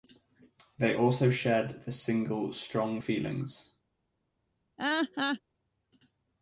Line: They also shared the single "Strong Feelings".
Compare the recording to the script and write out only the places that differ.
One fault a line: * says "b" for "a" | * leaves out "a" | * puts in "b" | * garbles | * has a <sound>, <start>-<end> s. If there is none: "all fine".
* has a laugh, 4.8-5.4 s